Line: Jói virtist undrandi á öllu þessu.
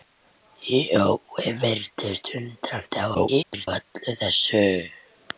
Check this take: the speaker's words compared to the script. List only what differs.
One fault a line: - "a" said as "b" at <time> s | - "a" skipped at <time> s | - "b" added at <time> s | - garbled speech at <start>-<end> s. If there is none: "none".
- garbled speech at 3.1-3.7 s